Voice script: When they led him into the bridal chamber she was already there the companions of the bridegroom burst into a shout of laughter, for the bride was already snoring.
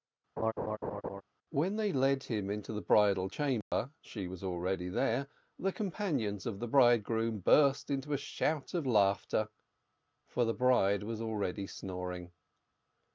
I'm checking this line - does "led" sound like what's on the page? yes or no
yes